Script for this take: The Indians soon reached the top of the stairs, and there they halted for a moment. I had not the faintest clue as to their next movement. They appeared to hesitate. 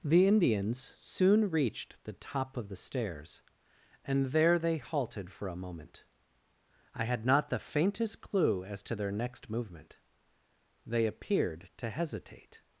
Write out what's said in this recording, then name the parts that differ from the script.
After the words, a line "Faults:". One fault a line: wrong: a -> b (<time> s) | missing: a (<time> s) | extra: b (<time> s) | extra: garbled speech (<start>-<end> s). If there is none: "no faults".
The Indians soon reached the top of the stairs, and there they halted for a moment. I had not the faintest clue as to their next movement. They appeared to hesitate.
Faults:
no faults